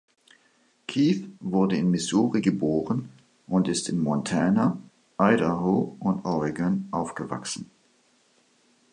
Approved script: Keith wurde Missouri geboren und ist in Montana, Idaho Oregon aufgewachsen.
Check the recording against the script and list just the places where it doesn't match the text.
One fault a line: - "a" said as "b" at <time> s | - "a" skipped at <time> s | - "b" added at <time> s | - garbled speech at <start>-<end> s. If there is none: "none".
- "in" added at 1.8 s
- "und" added at 6.0 s